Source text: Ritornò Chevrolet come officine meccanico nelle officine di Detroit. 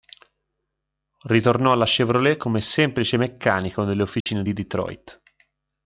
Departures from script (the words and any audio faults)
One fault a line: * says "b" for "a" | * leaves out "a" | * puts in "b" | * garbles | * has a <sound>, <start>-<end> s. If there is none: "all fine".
* puts in "alla"
* says "semplice" for "officine"
* has a dropout, 4.2-4.3 s